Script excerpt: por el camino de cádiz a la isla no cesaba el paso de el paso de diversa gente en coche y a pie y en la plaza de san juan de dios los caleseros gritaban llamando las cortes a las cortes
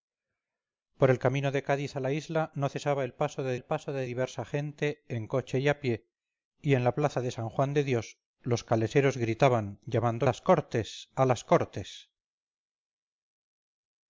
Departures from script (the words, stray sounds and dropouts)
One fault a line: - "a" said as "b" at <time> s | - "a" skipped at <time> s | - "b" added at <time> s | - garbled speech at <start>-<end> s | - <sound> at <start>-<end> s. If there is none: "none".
none